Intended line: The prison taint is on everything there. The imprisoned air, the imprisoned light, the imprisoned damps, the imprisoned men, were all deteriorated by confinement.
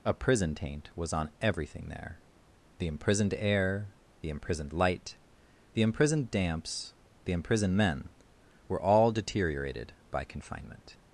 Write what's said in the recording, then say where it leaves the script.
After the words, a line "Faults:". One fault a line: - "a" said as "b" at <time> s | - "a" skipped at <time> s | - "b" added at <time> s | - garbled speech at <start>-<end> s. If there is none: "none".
A prison taint was on everything there. The imprisoned air, the imprisoned light, the imprisoned damps, the imprisoned men, were all deteriorated by confinement.
Faults:
- "The" said as "A" at 0.0 s
- "is" said as "was" at 0.9 s